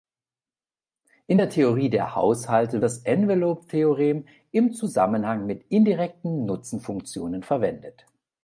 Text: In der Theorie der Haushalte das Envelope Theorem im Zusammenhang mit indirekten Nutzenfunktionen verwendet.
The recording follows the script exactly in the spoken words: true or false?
true